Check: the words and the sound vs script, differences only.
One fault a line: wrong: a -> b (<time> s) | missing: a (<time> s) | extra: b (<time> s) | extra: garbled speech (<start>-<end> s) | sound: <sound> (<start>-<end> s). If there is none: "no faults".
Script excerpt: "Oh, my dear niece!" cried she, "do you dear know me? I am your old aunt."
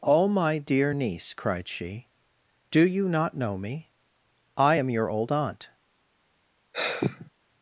wrong: dear -> not (3.1 s)
sound: sigh (6.7-7.3 s)